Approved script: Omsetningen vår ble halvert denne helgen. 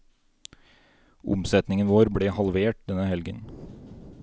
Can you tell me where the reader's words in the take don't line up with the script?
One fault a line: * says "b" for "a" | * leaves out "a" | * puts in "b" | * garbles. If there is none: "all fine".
all fine